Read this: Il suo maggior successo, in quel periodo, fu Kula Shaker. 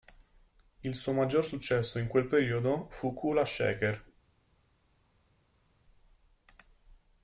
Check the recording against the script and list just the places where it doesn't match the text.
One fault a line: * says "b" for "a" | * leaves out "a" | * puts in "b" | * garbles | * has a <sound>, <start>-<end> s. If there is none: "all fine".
all fine